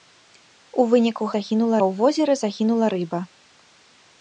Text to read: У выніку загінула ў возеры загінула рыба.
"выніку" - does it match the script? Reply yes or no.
yes